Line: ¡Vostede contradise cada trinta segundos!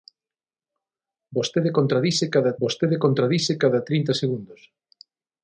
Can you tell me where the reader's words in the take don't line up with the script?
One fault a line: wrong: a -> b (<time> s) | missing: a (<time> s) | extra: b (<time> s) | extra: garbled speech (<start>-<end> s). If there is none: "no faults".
extra: vostede contradise cada (2.6 s)